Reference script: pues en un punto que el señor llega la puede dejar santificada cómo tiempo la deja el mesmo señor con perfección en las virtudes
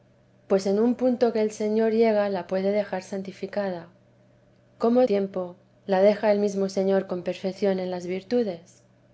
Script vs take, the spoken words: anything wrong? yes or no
no